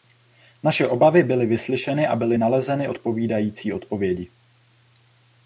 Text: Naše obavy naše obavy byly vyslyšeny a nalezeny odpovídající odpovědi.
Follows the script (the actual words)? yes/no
no